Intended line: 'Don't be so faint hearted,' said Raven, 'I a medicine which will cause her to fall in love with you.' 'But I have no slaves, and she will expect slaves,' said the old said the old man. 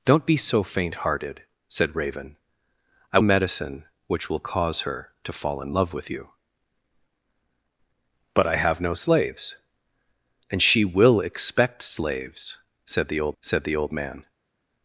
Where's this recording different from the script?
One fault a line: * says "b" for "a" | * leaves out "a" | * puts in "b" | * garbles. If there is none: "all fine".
all fine